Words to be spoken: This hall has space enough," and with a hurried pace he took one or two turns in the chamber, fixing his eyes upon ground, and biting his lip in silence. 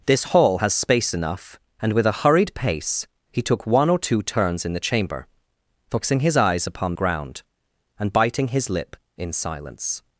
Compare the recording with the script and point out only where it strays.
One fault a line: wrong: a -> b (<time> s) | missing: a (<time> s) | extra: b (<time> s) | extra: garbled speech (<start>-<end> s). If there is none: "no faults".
no faults